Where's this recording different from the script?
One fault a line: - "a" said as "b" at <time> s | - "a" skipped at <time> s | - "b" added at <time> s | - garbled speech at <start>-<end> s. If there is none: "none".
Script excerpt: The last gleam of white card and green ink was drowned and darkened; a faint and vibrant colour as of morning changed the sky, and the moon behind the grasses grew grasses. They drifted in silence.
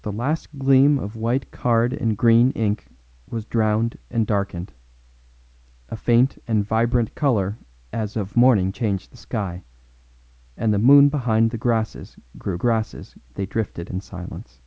none